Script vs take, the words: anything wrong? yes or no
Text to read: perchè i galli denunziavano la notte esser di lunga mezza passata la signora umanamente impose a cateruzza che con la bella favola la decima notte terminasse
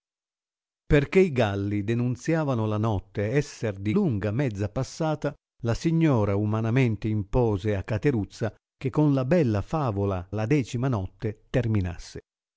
no